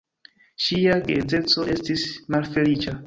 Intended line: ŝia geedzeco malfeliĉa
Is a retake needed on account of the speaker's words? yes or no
yes